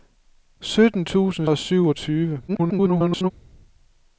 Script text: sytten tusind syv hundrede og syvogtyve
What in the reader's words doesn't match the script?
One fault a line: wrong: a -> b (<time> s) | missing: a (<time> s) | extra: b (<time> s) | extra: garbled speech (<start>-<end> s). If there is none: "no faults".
missing: syv hundrede (1.5 s)
extra: garbled speech (2.5-3.3 s)